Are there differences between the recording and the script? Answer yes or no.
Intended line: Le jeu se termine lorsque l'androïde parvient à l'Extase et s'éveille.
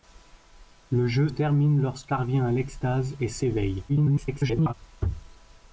yes